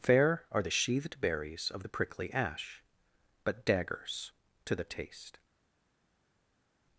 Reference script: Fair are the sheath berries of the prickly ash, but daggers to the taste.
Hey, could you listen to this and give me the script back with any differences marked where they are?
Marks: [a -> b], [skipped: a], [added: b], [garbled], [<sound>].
Fair are the [sheath -> sheathed] berries of the prickly ash, but daggers to the taste.